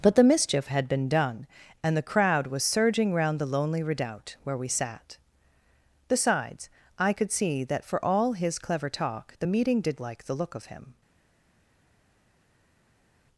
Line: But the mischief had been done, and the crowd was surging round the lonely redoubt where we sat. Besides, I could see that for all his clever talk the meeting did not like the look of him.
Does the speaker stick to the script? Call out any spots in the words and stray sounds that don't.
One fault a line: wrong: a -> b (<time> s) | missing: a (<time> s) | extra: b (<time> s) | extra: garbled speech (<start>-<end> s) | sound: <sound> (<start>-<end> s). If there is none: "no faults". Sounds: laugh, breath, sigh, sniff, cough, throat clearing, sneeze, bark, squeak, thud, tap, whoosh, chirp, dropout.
missing: not (10.0 s)